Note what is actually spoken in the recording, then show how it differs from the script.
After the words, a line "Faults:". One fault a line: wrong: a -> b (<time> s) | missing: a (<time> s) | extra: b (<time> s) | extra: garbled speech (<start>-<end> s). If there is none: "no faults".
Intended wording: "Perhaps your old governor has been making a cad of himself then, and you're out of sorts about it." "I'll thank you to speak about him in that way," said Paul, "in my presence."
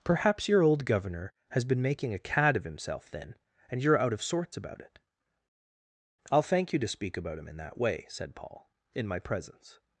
"Perhaps your old governor has been making a cad of himself then, and you're out of sorts about it." "I'll thank you to speak about him in that way," said Paul, "in my presence."
Faults:
no faults